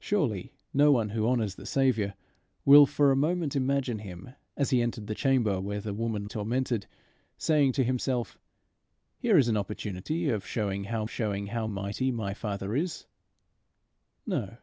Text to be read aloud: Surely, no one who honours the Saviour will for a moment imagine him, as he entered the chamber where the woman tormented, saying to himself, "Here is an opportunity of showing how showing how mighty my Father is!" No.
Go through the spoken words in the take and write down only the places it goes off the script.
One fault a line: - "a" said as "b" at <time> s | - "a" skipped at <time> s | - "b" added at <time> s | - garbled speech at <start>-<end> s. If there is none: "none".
none